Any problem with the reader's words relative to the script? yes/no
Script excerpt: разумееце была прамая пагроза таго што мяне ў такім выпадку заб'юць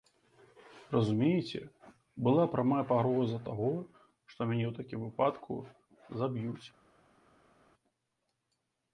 no